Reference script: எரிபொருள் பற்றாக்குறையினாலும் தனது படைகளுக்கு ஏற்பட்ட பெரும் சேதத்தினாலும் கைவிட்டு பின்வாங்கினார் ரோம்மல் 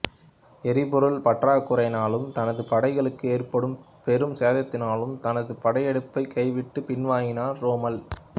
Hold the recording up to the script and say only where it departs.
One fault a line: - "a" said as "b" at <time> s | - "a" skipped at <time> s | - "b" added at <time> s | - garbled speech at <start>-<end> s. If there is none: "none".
- "தனது படையெடுப்பைக்" added at 5.2 s